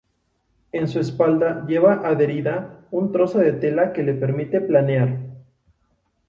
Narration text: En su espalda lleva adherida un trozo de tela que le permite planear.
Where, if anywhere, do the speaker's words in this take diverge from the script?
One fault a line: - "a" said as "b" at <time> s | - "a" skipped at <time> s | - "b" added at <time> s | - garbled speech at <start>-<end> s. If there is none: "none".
none